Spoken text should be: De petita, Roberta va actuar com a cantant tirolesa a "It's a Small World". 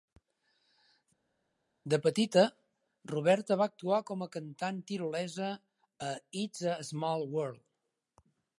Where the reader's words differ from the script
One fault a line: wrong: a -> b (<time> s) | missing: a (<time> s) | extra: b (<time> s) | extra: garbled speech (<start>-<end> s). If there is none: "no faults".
no faults